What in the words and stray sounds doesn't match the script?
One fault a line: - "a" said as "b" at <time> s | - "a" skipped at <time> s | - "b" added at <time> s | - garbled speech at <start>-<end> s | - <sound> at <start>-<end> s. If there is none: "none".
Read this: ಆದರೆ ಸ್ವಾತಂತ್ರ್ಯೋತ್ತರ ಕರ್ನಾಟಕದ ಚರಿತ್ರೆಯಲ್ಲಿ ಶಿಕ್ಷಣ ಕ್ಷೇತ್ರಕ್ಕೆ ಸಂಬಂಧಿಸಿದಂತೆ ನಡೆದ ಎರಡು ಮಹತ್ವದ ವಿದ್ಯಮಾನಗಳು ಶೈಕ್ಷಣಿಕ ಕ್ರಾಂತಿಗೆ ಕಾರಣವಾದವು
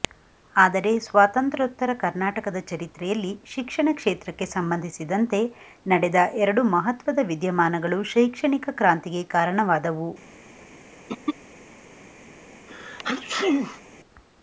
- throat clearing at 11.1-11.3 s
- sneeze at 12.7-13.8 s